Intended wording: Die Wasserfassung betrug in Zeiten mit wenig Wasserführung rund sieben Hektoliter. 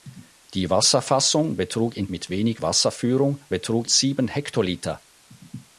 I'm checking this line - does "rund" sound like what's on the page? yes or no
no